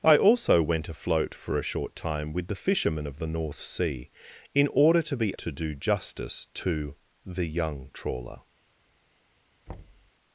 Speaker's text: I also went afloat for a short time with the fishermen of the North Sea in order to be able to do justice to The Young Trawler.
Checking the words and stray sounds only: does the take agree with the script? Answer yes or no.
no